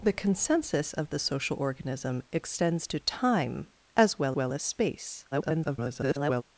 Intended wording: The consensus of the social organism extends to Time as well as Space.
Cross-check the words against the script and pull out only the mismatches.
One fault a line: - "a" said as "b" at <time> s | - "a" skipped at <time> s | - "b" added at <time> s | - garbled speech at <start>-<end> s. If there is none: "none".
- "well" added at 4.3 s
- garbled speech at 5.3-6.4 s